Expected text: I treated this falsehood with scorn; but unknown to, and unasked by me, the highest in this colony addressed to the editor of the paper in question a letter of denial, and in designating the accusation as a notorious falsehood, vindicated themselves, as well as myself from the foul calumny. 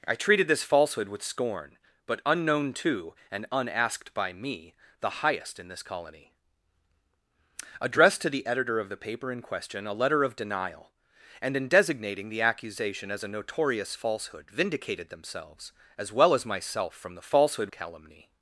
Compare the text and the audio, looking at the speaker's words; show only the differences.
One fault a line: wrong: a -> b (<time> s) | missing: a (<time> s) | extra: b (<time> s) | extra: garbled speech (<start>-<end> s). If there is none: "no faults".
wrong: foul -> falsehood (17.2 s)